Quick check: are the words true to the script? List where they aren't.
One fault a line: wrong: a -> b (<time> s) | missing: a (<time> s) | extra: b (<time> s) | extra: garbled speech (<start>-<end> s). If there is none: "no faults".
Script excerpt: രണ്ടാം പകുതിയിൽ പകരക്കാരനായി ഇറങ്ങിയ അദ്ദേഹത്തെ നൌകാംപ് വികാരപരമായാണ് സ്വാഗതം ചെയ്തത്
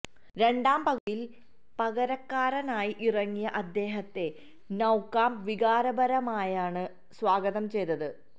no faults